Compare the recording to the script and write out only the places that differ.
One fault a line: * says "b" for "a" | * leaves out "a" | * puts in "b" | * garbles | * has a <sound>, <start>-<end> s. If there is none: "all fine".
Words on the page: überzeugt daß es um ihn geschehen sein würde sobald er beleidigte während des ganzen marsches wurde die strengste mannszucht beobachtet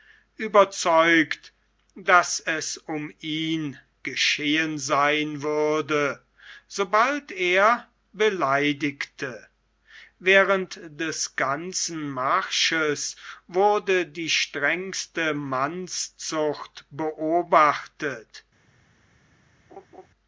* has a laugh, 19.7-20.1 s